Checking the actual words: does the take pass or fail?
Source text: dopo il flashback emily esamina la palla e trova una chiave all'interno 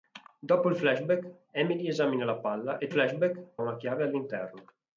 fail